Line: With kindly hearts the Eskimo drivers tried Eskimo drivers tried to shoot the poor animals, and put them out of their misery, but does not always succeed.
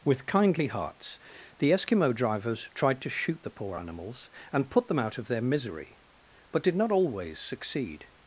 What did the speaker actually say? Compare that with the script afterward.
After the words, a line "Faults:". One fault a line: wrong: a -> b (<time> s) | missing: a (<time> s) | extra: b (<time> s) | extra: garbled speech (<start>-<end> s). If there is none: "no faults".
With kindly hearts the Eskimo drivers tried to shoot the poor animals, and put them out of their misery, but did not always succeed.
Faults:
missing: Eskimo drivers tried (3.0 s)
wrong: does -> did (6.6 s)